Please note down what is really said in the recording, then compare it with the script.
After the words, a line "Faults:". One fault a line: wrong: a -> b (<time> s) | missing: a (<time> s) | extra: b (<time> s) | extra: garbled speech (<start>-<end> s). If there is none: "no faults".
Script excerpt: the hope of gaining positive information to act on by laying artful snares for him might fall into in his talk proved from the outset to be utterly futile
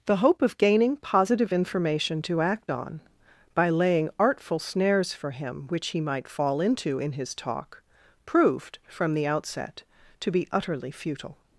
the hope of gaining positive information to act on by laying artful snares for him which he might fall into in his talk proved from the outset to be utterly futile
Faults:
extra: which he (5.7 s)